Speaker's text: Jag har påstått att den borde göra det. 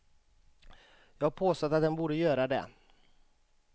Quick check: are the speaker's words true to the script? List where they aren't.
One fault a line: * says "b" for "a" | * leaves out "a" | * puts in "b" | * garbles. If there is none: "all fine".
all fine